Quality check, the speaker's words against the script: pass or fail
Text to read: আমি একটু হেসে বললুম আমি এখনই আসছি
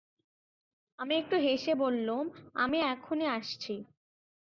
pass